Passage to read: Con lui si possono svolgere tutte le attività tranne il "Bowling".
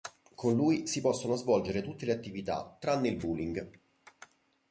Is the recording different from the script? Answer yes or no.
no